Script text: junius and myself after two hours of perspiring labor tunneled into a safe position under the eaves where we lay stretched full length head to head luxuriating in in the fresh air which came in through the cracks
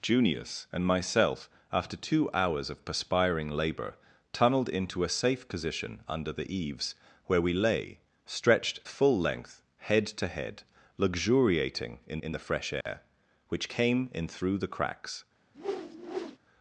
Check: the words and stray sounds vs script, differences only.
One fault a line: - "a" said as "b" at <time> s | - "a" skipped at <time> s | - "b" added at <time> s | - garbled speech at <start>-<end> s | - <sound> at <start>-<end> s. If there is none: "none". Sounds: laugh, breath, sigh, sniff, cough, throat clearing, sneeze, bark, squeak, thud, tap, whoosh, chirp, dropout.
- dropout at 12.8-12.9 s
- whoosh at 15.5-16.4 s